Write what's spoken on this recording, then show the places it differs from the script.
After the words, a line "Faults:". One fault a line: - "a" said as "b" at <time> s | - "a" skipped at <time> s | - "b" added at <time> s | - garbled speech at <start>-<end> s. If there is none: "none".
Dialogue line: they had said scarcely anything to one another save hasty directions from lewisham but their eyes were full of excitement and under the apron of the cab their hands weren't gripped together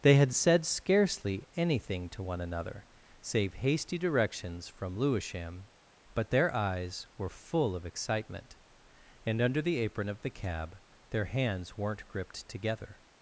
they had said scarcely anything to one another save hasty directions from lewisham but their eyes were full of excitement and under the apron of the cab their hands weren't gripped together
Faults:
none